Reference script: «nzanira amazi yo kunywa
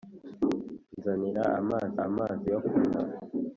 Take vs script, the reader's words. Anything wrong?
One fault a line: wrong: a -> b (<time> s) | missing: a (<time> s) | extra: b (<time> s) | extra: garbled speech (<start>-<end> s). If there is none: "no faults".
extra: amazi (2.1 s)